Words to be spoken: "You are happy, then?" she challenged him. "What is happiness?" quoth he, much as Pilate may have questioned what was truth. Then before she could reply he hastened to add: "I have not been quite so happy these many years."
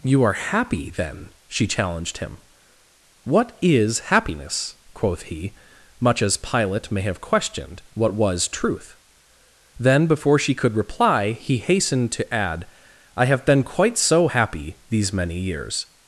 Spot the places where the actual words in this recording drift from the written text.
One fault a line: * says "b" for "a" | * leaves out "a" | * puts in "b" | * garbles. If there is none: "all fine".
* leaves out "not"